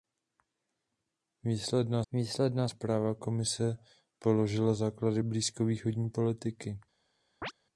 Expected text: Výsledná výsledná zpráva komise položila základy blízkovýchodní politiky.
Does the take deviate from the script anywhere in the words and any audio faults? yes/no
yes